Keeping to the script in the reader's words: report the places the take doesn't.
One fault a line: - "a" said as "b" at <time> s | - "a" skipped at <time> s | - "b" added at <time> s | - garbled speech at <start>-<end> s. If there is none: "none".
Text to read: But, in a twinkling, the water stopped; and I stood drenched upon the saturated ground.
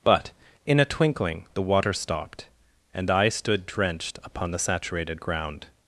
none